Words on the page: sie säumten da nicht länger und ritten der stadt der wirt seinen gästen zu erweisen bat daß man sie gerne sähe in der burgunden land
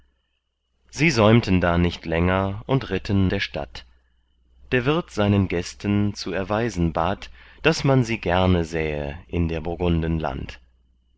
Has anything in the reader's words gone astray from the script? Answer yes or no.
no